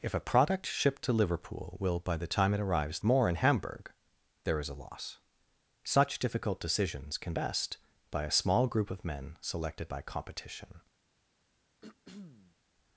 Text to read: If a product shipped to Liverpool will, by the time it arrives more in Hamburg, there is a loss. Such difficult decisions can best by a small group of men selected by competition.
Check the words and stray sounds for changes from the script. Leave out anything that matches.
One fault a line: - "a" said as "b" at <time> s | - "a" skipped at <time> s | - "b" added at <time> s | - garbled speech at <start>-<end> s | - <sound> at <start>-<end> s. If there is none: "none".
- throat clearing at 11.8-12.6 s